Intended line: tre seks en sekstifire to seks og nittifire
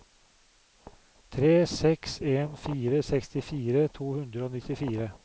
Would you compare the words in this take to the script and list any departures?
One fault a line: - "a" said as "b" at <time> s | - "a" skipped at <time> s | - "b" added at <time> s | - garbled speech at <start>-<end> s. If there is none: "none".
- "fire" added at 2.5 s
- "seks" said as "hundre" at 4.1 s